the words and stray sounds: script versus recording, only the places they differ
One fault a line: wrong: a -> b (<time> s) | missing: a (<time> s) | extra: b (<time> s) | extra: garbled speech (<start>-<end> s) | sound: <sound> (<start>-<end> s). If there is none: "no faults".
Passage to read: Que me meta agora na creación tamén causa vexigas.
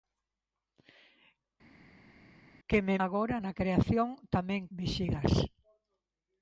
missing: meta (3.0 s)
missing: causa (4.6 s)